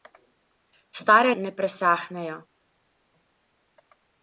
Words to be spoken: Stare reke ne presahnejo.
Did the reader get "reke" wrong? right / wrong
wrong